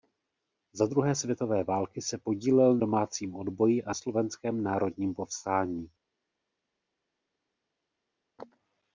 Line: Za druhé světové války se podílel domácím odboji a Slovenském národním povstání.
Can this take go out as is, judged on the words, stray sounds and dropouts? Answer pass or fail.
pass